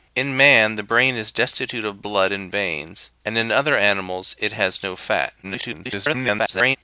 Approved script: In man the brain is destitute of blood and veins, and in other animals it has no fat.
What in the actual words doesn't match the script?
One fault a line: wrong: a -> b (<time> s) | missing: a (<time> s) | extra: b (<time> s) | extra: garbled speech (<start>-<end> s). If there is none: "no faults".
extra: garbled speech (5.4-6.8 s)